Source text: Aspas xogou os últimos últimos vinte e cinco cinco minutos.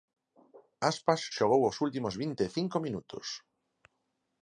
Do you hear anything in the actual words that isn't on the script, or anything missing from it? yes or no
yes